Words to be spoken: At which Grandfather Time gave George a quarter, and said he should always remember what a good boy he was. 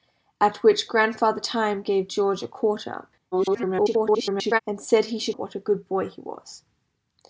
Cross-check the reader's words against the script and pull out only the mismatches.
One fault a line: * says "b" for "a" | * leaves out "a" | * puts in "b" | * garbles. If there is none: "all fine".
* garbles
* leaves out "always remember"